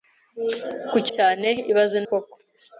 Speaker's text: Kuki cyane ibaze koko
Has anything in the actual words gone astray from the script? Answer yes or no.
no